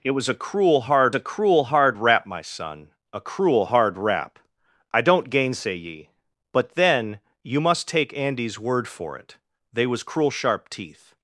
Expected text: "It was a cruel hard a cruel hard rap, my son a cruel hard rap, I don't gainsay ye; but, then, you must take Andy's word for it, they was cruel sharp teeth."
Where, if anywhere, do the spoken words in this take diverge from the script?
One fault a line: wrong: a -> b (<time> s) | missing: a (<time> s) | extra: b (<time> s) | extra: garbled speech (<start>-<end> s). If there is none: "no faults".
no faults